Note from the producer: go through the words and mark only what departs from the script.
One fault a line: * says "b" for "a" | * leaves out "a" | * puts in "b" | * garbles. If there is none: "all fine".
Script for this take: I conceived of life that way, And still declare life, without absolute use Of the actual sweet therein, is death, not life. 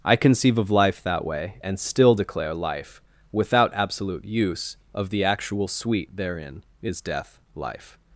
* says "conceive" for "conceived"
* leaves out "not"